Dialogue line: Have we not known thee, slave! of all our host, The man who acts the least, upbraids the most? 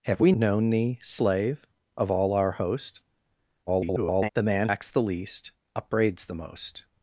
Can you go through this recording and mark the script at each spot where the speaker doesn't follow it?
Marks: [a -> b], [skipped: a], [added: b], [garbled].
Have we [skipped: not] known thee, slave! of all our host, [garbled] The man [skipped: who] acts the least, upbraids the most?